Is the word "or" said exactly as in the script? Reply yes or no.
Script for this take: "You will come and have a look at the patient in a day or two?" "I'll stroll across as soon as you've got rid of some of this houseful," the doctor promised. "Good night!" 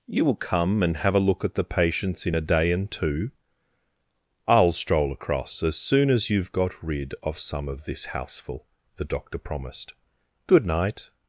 no